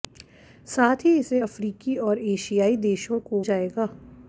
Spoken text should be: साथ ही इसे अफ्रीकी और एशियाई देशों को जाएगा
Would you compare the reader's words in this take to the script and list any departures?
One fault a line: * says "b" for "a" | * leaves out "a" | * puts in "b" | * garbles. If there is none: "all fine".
all fine